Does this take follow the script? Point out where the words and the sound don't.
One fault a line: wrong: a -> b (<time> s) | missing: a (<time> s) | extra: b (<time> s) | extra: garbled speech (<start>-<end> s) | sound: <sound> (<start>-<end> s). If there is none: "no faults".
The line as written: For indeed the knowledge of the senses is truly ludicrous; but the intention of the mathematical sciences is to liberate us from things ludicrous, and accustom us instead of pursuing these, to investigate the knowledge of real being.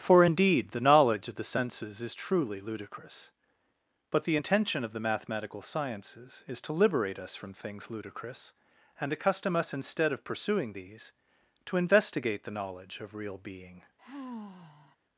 sound: sigh (14.0-15.0 s)